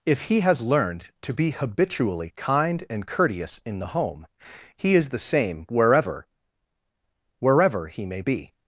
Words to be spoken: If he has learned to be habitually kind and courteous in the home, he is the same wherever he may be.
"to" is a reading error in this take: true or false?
false